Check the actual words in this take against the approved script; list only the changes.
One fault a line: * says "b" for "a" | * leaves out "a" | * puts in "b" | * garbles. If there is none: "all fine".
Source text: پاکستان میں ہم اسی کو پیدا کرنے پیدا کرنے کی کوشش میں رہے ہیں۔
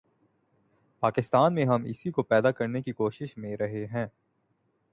* leaves out "پیدا کرنے"